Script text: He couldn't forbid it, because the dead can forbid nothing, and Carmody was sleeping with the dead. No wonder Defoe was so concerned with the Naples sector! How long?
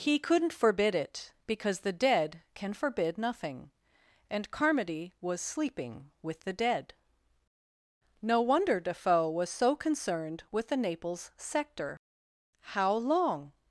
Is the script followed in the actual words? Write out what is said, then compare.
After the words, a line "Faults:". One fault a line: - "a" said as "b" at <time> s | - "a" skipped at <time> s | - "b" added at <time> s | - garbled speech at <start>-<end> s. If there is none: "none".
He couldn't forbid it, because the dead can forbid nothing, and Carmody was sleeping with the dead. No wonder Defoe was so concerned with the Naples sector! How long?
Faults:
none